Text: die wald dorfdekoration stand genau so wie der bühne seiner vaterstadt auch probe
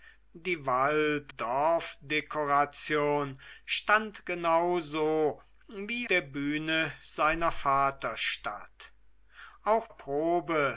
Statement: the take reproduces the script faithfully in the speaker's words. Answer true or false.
true